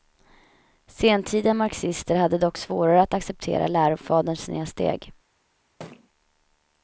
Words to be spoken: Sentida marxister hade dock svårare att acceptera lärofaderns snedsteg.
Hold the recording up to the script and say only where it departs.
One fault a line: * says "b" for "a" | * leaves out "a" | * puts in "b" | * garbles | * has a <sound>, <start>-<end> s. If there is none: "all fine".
* has a thud, 5.8-6.1 s